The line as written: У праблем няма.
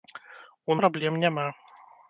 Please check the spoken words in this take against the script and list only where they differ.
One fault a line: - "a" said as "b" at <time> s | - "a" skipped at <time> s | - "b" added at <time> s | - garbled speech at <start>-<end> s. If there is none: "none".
none